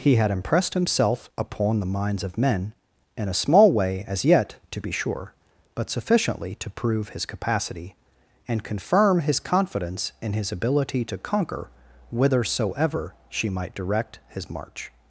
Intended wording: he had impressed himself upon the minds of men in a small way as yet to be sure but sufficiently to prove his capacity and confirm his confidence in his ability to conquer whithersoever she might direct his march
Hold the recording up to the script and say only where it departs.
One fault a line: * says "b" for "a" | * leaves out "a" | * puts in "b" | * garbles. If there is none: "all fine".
all fine